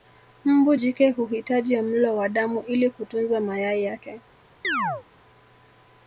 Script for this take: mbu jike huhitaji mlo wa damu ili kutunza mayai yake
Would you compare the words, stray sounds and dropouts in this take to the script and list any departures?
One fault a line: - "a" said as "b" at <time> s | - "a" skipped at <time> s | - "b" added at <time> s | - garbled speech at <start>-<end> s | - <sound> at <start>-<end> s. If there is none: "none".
- chirp at 4.6-5.0 s